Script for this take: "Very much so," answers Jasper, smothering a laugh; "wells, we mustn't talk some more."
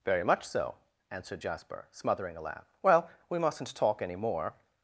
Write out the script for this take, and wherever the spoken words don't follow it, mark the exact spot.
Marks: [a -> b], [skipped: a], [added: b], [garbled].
"Very much so," [answers -> answered] Jasper, smothering a laugh; ["wells, -> well] we mustn't talk [some -> any] more."